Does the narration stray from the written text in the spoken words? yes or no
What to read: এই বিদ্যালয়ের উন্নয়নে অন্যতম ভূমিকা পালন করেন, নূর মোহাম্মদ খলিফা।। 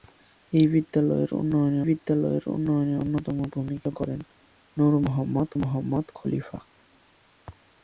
yes